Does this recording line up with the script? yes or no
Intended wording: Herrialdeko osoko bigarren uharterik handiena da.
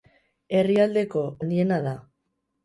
no